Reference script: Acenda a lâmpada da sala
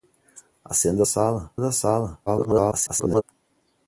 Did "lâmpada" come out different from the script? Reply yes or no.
yes